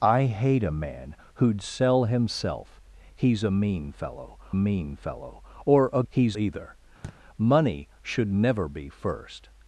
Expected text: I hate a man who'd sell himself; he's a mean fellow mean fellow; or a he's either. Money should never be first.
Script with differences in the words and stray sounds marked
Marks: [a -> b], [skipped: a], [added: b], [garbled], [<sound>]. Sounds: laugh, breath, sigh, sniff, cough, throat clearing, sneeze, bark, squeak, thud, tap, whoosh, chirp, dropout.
I hate a man who'd sell himself; he's a mean fellow mean fellow; or a he's either. [thud] Money should never be first.